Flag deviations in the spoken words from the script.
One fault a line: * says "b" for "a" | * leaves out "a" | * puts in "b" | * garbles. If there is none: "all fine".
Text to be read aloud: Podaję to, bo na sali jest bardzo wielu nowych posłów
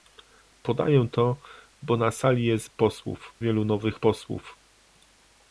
* says "posłów" for "bardzo"